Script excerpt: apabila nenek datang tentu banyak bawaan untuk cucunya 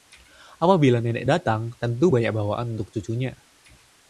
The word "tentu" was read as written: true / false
true